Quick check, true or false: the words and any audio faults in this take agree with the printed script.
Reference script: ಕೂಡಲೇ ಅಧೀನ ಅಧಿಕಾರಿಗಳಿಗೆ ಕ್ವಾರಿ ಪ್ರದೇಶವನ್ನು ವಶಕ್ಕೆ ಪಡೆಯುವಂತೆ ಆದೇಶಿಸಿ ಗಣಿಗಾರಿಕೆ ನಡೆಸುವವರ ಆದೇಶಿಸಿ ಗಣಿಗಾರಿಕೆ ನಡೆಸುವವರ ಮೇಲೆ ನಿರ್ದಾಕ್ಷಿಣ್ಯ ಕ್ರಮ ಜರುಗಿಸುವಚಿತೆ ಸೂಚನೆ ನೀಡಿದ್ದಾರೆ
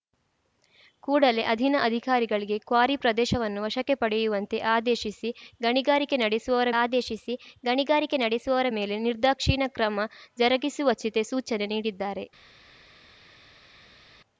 true